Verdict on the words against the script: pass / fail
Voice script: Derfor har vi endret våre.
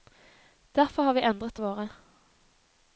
pass